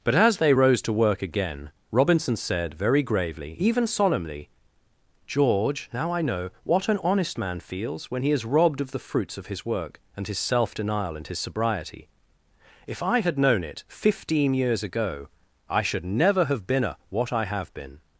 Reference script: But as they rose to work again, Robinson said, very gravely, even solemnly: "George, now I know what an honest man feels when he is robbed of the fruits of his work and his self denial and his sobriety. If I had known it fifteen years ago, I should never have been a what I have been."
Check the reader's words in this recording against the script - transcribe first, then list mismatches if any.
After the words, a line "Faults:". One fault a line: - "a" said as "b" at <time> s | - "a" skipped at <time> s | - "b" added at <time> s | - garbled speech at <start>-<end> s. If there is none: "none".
But as they rose to work again, Robinson said, very gravely, even solemnly: "George, now I know what an honest man feels when he is robbed of the fruits of his work and his self denial and his sobriety. If I had known it fifteen years ago, I should never have been a what I have been."
Faults:
none